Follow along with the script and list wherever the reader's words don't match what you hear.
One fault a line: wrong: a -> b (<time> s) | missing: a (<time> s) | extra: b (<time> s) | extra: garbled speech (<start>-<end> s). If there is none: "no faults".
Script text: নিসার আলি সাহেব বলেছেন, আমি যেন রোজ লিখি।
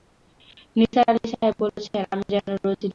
no faults